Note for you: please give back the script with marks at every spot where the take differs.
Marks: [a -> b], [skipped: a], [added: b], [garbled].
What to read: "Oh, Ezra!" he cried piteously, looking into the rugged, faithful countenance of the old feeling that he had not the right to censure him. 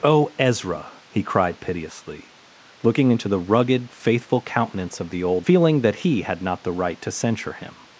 "Oh, Ezra!" he cried piteously, looking into the rugged, faithful countenance of the old feeling that he had not the right to censure him.